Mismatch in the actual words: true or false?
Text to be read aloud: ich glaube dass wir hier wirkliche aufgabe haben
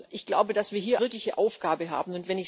false